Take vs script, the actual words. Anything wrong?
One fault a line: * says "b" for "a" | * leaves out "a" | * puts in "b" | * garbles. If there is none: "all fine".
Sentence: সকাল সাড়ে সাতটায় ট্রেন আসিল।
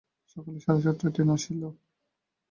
all fine